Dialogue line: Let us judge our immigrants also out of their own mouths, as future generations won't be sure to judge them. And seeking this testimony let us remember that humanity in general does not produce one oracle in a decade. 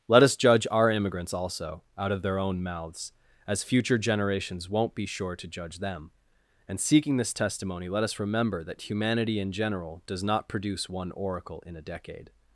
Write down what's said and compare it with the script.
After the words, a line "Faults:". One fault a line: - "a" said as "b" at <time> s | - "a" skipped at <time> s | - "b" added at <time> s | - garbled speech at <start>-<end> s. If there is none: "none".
Let us judge our immigrants also out of their own mouths, as future generations won't be sure to judge them. And seeking this testimony let us remember that humanity in general does not produce one oracle in a decade.
Faults:
none